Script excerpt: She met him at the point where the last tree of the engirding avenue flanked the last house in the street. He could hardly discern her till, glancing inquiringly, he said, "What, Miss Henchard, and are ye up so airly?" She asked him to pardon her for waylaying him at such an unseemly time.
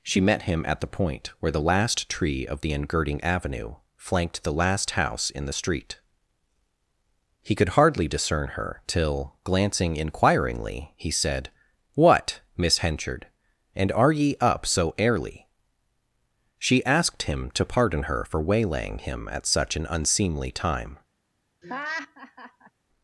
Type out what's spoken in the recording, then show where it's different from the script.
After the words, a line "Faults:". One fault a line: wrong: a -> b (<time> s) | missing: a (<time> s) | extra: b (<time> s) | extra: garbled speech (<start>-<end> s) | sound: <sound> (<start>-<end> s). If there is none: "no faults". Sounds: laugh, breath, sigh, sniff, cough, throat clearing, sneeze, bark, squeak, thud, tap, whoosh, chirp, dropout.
She met him at the point where the last tree of the engirding avenue flanked the last house in the street. He could hardly discern her till, glancing inquiringly, he said, "What, Miss Henchard, and are ye up so airly?" She asked him to pardon her for waylaying him at such an unseemly time.
Faults:
sound: laugh (21.6-22.7 s)